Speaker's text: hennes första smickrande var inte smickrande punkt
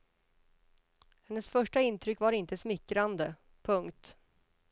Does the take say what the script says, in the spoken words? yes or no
no